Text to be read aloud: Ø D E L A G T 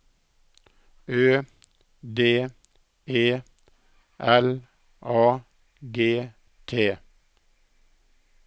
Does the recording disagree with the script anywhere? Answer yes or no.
no